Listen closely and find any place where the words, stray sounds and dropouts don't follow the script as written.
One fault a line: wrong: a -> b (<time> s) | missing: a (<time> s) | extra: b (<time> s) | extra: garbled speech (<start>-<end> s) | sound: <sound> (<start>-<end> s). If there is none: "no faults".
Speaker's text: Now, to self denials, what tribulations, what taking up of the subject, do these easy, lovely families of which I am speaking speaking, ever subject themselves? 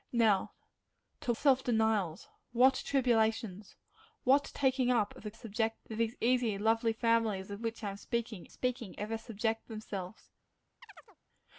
sound: chirp (10.8-11.2 s)